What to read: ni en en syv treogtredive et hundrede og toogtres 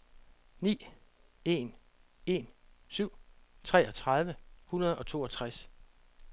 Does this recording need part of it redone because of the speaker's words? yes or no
yes